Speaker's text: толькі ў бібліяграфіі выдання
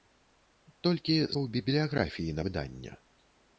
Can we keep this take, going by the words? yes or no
yes